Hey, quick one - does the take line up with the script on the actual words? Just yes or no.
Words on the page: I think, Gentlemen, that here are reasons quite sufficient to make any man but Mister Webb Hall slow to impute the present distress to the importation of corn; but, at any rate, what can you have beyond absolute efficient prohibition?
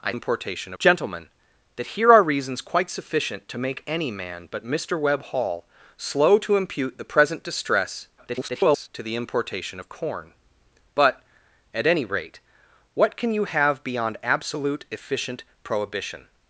no